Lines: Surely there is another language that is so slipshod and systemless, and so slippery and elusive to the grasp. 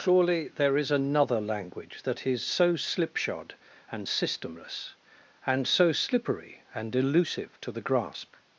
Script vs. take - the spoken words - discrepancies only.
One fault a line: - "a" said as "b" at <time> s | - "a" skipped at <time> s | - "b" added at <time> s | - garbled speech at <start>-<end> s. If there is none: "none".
none